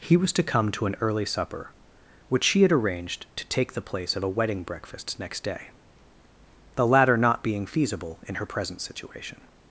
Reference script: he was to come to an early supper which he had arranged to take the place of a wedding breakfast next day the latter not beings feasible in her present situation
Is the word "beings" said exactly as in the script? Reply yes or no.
no